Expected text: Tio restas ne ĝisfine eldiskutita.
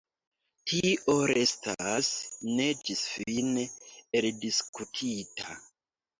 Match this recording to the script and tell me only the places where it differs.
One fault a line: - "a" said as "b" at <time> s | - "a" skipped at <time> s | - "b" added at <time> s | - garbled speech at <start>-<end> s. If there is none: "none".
none